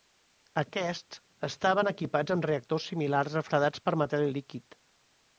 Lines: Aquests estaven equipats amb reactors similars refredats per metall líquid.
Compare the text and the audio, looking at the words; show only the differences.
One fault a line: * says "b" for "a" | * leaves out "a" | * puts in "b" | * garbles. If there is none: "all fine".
all fine